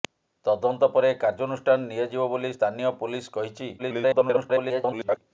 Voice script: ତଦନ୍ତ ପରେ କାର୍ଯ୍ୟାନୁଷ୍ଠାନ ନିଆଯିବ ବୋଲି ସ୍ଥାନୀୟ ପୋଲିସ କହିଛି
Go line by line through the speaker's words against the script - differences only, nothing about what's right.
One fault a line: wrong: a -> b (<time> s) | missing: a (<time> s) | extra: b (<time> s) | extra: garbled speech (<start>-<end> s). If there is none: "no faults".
extra: garbled speech (3.8-5.2 s)